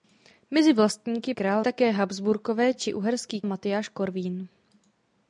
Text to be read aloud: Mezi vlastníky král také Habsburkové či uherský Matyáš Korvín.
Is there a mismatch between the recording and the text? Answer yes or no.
no